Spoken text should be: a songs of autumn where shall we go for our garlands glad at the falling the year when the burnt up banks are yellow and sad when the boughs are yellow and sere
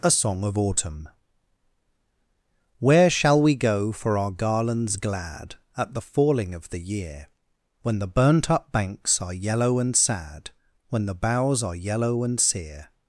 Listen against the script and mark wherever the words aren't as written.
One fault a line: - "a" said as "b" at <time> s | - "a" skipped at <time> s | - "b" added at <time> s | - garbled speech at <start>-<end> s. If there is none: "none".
- "songs" said as "song" at 0.1 s
- "of" added at 6.5 s